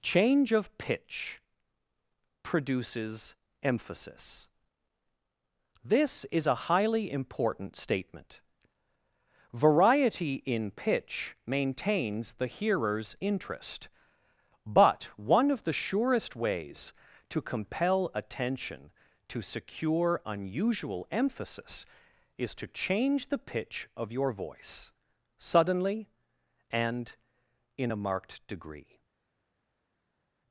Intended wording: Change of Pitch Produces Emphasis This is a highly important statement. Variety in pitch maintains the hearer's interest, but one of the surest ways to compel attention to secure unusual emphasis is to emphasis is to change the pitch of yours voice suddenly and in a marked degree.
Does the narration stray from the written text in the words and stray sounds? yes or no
yes